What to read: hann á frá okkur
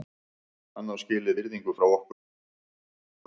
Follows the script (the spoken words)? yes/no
no